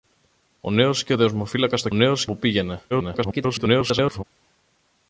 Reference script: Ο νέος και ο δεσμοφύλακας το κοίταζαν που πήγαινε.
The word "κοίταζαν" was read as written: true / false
false